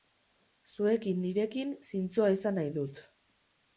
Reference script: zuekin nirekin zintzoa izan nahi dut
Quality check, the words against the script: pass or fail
pass